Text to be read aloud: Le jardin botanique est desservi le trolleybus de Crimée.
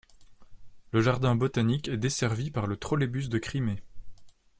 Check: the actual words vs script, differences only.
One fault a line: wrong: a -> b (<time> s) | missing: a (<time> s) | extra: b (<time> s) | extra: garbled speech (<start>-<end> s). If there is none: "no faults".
extra: par (2.5 s)